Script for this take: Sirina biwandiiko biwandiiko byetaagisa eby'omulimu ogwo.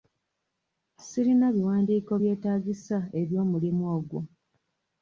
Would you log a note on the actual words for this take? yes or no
yes